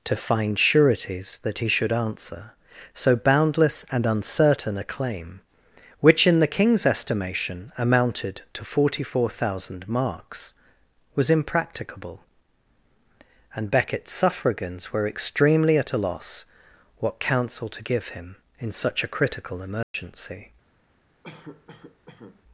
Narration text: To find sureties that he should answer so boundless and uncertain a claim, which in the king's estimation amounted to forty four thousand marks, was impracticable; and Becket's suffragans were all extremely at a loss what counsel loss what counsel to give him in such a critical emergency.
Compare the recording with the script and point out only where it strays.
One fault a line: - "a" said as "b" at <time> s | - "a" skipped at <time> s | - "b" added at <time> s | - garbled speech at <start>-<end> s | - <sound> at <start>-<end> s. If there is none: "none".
- "all" skipped at 15.1 s
- "loss what counsel" skipped at 17.7 s
- dropout at 19.8-19.9 s
- cough at 21.2-22.4 s